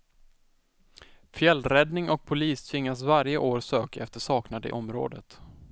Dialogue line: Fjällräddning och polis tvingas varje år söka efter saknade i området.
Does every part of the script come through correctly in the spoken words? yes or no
yes